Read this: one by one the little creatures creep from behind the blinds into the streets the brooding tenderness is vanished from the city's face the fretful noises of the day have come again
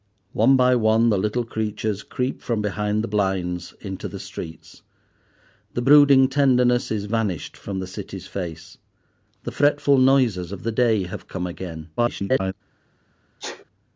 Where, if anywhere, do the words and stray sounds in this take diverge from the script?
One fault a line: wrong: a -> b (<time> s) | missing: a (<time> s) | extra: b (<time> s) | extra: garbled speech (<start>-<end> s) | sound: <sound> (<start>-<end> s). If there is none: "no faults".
extra: garbled speech (12.0-12.5 s)
sound: sneeze (13.4-13.6 s)